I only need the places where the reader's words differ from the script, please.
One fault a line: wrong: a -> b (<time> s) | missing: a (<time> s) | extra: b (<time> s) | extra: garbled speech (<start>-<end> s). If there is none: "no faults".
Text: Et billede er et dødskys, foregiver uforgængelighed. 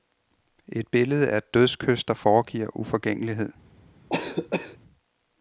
extra: der (2.0 s)